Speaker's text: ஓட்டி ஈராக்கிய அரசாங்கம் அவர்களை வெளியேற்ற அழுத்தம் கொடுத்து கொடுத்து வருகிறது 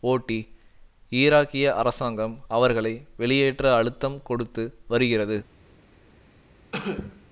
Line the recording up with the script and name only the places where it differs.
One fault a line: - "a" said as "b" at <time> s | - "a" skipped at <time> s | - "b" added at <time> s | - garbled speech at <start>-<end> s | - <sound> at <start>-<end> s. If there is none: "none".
- "கொடுத்து" skipped at 4.6 s
- cough at 6.7-7.2 s